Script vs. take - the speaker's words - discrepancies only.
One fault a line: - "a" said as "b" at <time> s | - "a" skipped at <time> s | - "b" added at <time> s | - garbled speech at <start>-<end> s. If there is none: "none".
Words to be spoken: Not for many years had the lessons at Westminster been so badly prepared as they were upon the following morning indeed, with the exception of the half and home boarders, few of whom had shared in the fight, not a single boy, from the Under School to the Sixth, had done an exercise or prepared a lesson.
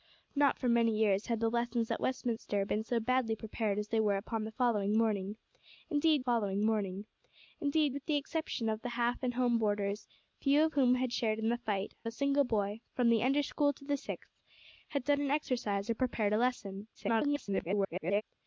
- "following morning indeed" added at 6.2 s
- "not" skipped at 11.9 s
- garbled speech at 16.9-18.2 s